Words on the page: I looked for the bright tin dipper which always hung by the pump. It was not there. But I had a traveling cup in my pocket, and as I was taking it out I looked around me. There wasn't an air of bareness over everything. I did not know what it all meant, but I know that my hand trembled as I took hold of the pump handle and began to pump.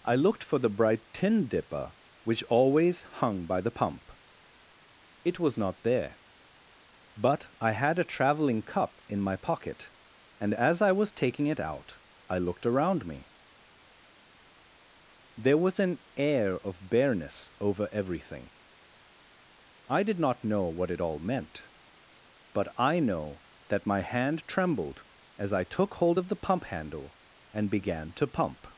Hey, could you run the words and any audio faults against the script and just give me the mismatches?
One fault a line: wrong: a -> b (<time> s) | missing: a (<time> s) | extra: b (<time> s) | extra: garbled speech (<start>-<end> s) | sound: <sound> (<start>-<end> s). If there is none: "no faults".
wrong: wasn't -> was (15.6 s)